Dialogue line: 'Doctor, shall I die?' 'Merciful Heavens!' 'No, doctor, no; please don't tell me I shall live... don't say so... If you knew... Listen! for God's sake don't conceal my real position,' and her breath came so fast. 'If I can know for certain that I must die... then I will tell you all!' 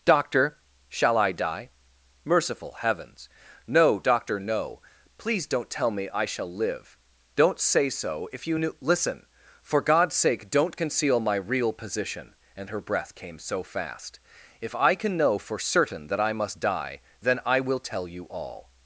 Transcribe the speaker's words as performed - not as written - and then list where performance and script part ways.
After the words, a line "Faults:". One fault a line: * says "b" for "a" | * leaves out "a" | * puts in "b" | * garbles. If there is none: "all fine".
'Doctor, shall I die?' 'Merciful Heavens!' 'No, doctor, no; please don't tell me I shall live... don't say so... If you knew... Listen! for God's sake don't conceal my real position,' and her breath came so fast. 'If I can know for certain that I must die... then I will tell you all!'
Faults:
all fine